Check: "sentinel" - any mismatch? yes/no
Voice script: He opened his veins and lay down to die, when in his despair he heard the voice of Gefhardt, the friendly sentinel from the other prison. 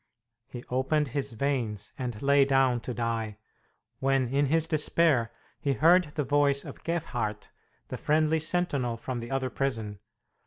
no